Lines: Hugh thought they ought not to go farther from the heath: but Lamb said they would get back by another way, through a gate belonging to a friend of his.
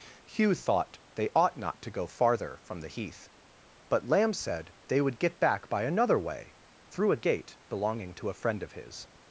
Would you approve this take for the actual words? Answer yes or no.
yes